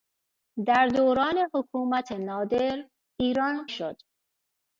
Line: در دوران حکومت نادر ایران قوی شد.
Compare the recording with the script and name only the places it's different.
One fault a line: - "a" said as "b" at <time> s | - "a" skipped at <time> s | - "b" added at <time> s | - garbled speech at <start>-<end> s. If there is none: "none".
- "قوی" skipped at 3.7 s